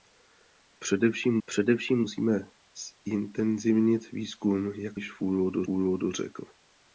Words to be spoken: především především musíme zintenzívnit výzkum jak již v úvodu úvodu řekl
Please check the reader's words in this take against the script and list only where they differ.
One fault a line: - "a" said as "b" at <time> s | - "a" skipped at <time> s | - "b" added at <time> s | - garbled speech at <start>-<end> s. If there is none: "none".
none